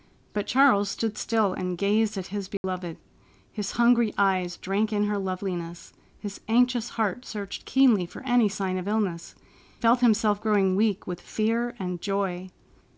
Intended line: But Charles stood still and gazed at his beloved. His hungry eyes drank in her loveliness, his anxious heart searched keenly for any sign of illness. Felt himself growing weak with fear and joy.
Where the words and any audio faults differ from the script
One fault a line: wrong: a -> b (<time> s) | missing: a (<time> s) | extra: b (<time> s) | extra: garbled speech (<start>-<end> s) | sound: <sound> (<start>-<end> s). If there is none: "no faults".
sound: dropout (2.6-2.6 s)